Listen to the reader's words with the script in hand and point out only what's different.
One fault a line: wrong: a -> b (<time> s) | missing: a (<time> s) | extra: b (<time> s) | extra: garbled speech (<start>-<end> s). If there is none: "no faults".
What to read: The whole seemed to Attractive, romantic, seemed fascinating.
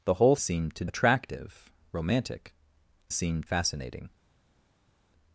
no faults